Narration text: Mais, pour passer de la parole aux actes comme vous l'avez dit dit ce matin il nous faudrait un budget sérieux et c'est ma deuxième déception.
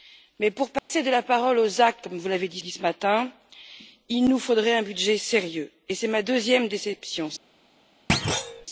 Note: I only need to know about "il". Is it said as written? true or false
true